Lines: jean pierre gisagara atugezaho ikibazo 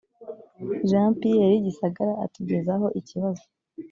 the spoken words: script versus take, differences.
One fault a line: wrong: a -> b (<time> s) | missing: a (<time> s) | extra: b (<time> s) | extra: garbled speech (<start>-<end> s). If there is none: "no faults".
no faults